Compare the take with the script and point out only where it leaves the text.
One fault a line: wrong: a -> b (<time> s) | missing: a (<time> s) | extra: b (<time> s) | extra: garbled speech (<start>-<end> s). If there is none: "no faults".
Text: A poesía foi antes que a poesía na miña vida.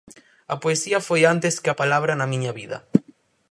wrong: poesía -> palabra (1.8 s)